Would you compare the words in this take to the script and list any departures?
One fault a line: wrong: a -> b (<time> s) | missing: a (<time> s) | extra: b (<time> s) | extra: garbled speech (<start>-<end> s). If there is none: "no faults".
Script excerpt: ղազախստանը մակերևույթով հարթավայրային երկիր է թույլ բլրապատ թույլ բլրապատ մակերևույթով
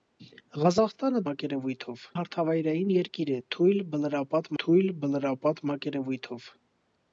no faults